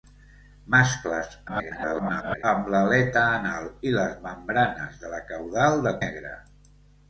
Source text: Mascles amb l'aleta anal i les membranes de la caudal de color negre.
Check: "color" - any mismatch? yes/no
yes